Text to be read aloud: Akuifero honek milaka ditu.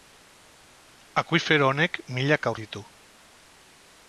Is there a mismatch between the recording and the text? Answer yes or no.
no